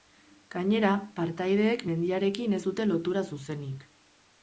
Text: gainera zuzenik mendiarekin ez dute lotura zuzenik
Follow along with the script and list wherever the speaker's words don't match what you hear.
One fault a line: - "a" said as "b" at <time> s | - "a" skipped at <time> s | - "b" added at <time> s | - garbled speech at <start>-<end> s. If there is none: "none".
- "zuzenik" said as "partaideek" at 1.2 s